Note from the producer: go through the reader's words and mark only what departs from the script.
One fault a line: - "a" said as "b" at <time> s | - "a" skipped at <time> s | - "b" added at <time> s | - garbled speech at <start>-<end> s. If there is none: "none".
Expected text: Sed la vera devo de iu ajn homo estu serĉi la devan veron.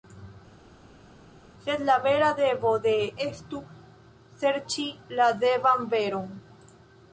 - "iu ajn homo" skipped at 2.9 s